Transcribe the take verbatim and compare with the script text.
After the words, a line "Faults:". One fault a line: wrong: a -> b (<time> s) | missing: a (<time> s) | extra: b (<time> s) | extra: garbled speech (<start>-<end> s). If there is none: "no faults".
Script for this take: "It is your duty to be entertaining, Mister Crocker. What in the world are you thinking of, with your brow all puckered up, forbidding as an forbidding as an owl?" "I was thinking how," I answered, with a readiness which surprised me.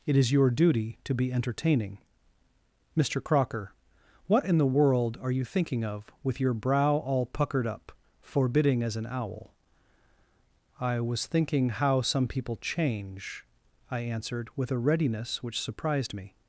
"It is your duty to be entertaining, Mister Crocker. What in the world are you thinking of, with your brow all puckered up, forbidding as an owl?" "I was thinking how some people change," I answered, with a readiness which surprised me.
Faults:
missing: forbidding as an (9.1 s)
extra: some people change (12.0 s)